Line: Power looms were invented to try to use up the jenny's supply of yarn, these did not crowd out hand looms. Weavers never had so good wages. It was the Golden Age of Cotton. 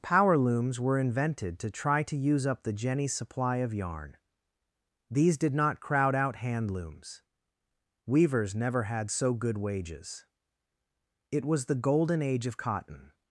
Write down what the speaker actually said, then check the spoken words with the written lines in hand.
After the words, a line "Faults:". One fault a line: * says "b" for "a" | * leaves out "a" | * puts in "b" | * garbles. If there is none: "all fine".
Power looms were invented to try to use up the jenny's supply of yarn, these did not crowd out hand looms. Weavers never had so good wages. It was the Golden Age of Cotton.
Faults:
all fine